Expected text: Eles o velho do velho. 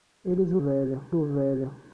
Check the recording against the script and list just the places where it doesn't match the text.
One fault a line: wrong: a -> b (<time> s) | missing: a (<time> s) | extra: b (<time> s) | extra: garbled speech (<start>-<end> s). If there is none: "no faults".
no faults